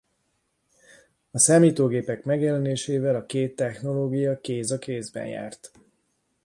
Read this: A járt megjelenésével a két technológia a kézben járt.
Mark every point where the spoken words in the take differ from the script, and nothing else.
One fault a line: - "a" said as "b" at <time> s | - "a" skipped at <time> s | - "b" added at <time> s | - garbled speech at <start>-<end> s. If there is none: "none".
- "járt" said as "számítógépek" at 1.4 s
- "kéz" added at 4.4 s